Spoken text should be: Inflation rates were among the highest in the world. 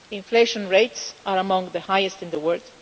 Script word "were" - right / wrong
wrong